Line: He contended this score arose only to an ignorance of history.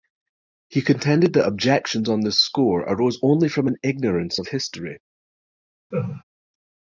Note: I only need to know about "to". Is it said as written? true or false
false